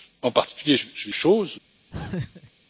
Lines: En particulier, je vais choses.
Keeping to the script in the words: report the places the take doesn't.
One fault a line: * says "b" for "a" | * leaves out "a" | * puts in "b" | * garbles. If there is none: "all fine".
all fine